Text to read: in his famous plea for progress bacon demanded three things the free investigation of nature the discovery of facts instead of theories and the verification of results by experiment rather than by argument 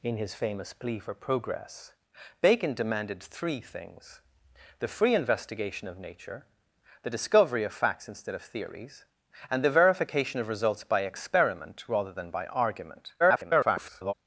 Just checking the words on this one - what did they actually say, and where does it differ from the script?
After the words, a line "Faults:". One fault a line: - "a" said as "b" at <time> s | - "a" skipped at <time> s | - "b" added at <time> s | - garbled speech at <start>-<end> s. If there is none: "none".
in his famous plea for progress bacon demanded three things the free investigation of nature the discovery of facts instead of theories and the verification of results by experiment rather than by argument [garbled]
Faults:
- garbled speech at 13.2-14.1 s